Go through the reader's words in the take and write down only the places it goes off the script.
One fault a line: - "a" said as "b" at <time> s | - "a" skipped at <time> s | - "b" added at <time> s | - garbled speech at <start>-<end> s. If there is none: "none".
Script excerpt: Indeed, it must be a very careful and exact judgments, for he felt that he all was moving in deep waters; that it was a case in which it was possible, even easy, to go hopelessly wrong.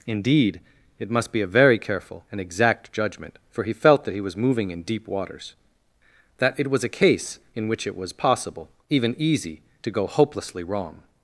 - "judgments" said as "judgment" at 2.9 s
- "all" skipped at 4.2 s